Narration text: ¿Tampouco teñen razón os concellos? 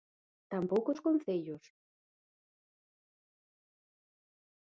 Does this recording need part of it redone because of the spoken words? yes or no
yes